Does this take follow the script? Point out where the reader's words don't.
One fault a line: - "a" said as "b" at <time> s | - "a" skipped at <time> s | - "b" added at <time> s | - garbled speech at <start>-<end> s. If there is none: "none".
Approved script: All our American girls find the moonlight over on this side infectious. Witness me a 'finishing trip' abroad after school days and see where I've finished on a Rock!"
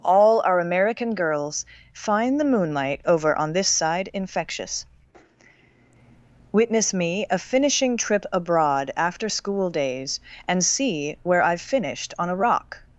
none